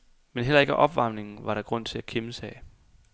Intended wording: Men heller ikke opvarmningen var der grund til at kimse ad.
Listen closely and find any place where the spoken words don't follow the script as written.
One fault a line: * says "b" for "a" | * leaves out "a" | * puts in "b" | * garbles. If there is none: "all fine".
all fine